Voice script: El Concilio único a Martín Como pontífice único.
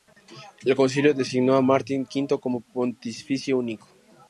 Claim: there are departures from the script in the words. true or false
true